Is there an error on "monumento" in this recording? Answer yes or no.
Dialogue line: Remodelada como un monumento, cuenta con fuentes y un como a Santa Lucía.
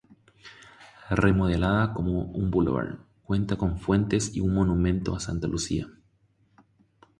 yes